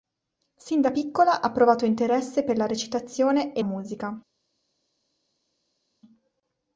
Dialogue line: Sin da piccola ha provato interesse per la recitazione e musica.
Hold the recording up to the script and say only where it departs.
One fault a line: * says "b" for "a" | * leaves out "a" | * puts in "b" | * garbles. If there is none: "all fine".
all fine